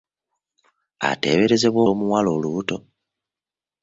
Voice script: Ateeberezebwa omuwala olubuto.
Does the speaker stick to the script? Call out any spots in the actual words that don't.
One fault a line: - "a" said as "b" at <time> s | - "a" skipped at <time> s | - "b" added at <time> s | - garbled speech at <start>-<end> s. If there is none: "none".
none